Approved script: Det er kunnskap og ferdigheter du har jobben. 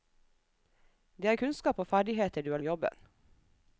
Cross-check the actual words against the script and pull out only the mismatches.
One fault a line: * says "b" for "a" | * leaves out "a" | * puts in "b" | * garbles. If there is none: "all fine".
all fine